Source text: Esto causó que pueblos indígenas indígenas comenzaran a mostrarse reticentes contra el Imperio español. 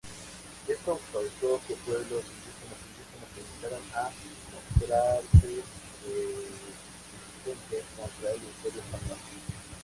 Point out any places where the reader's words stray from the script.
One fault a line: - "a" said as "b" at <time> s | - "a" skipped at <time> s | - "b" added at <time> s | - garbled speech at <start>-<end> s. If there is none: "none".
none